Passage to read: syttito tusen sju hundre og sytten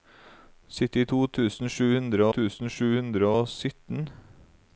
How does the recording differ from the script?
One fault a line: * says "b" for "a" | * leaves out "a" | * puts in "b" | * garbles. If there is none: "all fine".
* puts in "tusen sju hundre"